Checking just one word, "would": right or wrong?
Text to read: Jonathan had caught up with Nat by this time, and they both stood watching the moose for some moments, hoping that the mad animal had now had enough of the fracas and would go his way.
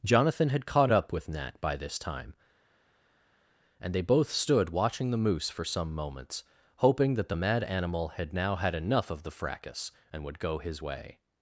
right